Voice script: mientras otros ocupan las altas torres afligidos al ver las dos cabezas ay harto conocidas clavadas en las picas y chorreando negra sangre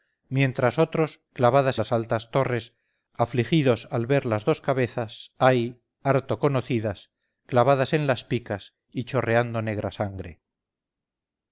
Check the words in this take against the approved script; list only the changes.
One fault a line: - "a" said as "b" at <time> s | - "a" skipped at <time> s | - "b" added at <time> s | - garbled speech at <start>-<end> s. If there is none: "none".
- "ocupan" said as "clavadas" at 1.3 s